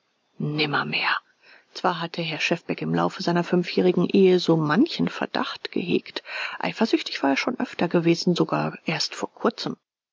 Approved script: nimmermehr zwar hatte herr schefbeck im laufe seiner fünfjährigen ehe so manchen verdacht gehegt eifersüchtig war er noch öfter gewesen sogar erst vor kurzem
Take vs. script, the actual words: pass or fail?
fail